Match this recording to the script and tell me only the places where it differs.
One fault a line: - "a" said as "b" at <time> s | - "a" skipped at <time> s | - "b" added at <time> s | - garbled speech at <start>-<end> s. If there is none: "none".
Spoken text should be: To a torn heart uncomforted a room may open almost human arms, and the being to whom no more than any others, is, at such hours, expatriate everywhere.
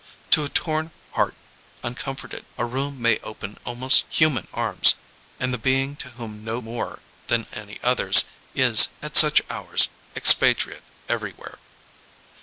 none